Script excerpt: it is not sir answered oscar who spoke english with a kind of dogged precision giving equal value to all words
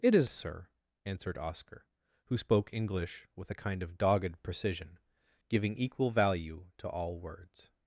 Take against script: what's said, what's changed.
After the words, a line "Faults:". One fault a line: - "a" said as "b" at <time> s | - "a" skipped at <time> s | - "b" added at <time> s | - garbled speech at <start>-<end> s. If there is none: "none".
it is sir answered oscar who spoke english with a kind of dogged precision giving equal value to all words
Faults:
- "not" skipped at 0.3 s